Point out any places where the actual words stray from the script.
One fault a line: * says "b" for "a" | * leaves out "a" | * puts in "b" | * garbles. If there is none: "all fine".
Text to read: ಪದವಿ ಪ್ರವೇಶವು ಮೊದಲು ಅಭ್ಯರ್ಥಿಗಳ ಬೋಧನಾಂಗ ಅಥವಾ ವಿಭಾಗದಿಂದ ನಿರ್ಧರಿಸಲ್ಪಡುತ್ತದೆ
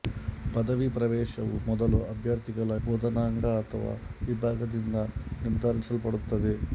all fine